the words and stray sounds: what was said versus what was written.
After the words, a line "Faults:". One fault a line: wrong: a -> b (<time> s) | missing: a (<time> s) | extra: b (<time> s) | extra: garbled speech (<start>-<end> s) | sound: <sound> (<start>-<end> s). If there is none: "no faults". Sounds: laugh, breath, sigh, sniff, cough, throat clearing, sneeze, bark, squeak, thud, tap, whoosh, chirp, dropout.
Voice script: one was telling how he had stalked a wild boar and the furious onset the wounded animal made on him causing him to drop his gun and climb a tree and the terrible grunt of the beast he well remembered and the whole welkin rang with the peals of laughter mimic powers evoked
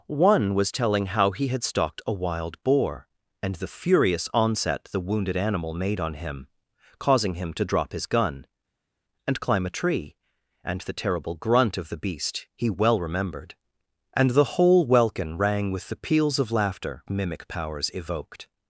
one was telling how he had stalked a wild boar and the furious onset the wounded animal made on him causing him to drop his gun and climb a tree and the terrible grunt of the beast he well remembered and the whole welkin rang with the peals of laughter mimic powers evoked
Faults:
no faults